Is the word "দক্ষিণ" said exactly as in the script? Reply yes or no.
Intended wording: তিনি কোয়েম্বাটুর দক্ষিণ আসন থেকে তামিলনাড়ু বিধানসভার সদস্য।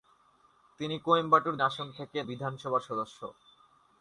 no